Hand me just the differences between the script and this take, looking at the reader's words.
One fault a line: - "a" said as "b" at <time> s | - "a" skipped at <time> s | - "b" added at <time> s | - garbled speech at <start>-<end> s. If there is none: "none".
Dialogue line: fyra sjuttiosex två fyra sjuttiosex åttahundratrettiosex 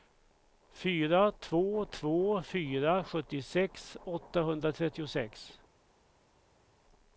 - "sjuttiosex" said as "två" at 1.3 s